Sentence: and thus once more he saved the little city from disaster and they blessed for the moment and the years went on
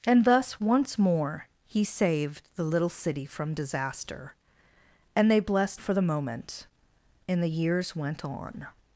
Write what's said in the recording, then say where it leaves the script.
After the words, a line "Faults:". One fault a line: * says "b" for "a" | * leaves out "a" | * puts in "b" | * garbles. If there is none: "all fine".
and thus once more he saved the little city from disaster and they blessed for the moment and the years went on
Faults:
all fine